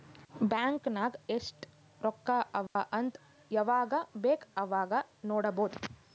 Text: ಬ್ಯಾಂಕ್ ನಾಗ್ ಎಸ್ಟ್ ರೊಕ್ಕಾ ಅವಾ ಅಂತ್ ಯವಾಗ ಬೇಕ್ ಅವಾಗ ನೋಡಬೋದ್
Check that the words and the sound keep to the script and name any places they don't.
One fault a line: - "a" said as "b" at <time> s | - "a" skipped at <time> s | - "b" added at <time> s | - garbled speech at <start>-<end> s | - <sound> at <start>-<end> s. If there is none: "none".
- dropout at 2.7-2.8 s